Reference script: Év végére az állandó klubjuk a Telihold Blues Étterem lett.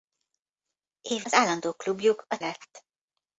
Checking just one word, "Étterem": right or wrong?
wrong